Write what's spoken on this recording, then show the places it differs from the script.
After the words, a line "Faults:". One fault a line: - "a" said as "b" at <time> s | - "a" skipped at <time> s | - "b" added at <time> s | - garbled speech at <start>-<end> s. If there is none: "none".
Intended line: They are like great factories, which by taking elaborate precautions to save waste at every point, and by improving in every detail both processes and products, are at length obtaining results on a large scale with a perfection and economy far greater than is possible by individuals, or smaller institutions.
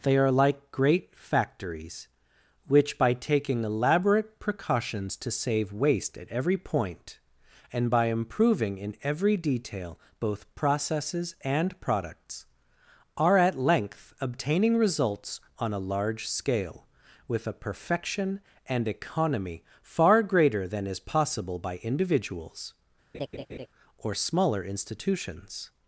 They are like great factories, which by taking elaborate precautions to save waste at every point, and by improving in every detail both processes and products, are at length obtaining results on a large scale with a perfection and economy far greater than is possible by individuals, or smaller institutions.
Faults:
none